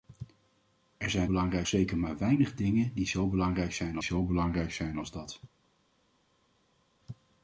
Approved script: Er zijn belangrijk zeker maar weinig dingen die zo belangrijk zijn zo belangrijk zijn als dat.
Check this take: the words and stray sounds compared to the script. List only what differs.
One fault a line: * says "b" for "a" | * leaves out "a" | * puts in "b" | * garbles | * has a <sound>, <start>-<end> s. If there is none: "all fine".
all fine